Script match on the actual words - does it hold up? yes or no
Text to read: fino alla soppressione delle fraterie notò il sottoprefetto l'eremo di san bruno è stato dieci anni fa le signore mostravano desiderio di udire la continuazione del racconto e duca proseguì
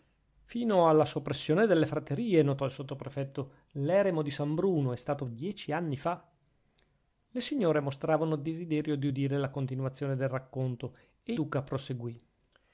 yes